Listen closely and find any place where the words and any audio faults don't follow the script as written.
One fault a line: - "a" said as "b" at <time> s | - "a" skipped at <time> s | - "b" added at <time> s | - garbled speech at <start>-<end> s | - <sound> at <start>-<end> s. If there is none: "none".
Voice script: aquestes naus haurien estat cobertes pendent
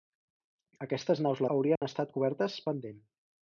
- dropout at 1.8-1.8 s